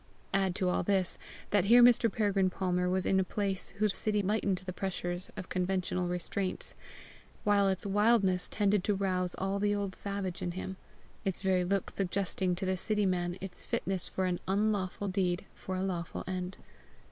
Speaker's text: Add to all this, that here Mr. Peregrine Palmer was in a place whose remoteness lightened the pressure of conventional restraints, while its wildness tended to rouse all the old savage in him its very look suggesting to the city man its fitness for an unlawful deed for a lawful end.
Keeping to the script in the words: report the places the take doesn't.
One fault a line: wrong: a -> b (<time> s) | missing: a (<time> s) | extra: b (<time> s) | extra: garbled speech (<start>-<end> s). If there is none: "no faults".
wrong: remoteness -> city (3.9 s)